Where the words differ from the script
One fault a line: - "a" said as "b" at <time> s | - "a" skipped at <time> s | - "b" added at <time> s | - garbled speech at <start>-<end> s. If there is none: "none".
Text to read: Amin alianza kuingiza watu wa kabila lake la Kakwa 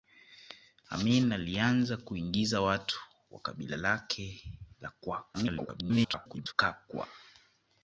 - garbled speech at 5.3-6.5 s